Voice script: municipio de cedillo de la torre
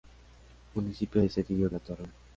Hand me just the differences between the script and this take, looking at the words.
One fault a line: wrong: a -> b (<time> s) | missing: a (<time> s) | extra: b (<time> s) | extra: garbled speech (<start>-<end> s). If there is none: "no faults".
missing: de (1.7 s)